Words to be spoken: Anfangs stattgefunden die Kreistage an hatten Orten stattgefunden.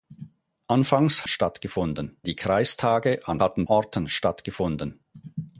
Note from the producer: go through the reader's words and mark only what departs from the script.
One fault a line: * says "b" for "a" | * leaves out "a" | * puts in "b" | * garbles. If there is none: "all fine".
all fine